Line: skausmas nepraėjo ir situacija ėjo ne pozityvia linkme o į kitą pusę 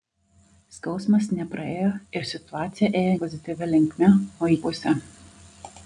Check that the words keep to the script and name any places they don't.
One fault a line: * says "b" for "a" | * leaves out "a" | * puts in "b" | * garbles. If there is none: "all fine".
* leaves out "ne"
* leaves out "kitą"